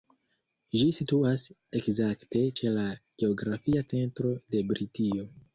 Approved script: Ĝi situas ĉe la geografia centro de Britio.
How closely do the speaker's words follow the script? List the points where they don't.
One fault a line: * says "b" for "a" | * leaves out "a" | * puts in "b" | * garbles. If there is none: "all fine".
* puts in "ekzakte"